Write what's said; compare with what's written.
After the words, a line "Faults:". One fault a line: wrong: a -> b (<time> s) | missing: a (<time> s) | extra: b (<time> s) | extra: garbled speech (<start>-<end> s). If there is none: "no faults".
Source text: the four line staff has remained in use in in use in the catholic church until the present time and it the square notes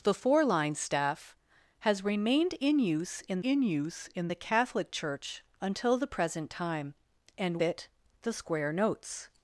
the four line staff has remained in use in in use in the catholic church until the present time and it the square notes
Faults:
no faults